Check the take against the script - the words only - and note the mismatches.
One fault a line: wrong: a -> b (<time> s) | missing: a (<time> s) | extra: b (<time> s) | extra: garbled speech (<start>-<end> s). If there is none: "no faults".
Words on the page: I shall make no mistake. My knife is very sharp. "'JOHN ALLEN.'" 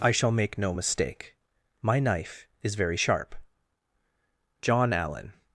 no faults